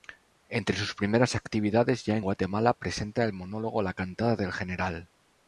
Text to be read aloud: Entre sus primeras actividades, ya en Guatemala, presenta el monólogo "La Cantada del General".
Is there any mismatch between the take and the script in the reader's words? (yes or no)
no